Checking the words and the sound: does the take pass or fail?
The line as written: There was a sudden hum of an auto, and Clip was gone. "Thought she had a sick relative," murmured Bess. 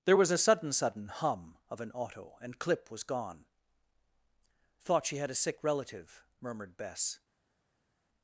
fail